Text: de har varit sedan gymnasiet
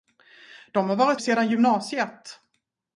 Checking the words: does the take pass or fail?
pass